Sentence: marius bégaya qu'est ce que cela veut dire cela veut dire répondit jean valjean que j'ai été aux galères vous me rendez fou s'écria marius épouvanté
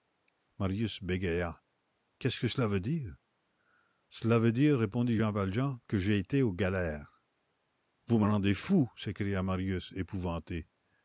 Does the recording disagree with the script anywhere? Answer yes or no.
no